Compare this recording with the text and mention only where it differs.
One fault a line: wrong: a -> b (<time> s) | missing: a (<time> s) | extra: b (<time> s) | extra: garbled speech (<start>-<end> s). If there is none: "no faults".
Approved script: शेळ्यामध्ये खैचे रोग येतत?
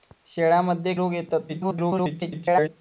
missing: खैचे (0.9 s)
extra: garbled speech (1.5-2.7 s)